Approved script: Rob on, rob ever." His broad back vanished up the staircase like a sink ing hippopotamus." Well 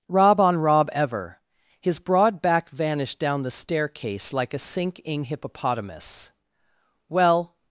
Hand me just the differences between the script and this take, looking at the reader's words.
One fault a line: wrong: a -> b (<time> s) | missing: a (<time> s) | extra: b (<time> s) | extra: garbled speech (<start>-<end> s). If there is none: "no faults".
wrong: up -> down (3.2 s)